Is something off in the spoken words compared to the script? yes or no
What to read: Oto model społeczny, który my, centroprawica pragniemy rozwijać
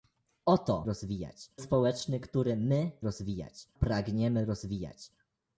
yes